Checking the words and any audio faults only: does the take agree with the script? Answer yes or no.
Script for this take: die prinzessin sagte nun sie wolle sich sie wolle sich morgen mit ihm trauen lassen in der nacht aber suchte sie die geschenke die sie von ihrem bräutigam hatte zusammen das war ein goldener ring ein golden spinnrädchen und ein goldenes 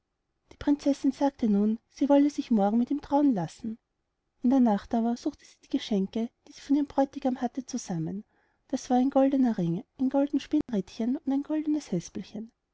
no